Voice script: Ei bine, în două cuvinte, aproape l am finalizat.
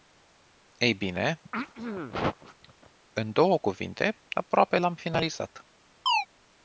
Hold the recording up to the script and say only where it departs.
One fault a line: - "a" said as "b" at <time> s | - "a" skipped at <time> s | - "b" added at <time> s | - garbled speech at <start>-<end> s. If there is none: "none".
none